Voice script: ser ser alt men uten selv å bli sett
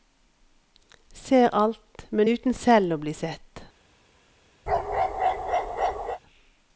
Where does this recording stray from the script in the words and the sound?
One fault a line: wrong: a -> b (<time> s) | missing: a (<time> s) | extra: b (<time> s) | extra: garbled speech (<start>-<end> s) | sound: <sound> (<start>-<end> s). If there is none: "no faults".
missing: ser (1.5 s)
sound: bark (4.7-6.2 s)